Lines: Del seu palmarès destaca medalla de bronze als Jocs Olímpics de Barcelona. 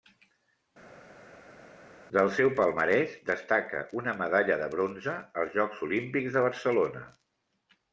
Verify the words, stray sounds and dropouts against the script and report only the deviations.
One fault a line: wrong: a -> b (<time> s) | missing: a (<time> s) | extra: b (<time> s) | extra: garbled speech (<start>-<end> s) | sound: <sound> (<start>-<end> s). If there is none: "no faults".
extra: una (4.0 s)